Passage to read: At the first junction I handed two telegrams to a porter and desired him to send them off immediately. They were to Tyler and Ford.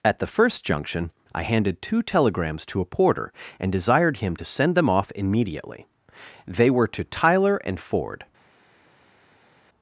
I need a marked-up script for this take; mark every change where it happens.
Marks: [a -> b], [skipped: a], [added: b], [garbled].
At the first junction I handed two telegrams to a porter and desired him to send them off immediately. They were to Tyler and Ford.